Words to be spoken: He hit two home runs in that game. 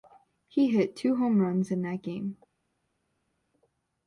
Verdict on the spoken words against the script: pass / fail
pass